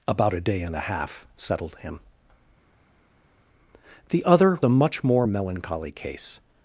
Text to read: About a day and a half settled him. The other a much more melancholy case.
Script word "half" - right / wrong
right